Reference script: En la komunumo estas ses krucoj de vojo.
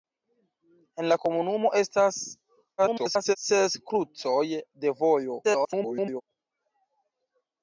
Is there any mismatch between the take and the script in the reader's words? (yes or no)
yes